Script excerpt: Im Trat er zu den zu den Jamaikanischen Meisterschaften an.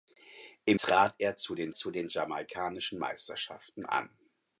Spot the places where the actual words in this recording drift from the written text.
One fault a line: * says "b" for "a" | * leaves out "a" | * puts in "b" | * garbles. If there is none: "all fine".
all fine